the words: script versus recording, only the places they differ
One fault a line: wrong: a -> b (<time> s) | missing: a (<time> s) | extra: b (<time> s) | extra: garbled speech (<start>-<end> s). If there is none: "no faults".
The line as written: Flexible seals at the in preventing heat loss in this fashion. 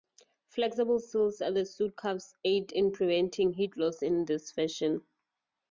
extra: suit cuffs aid (1.6 s)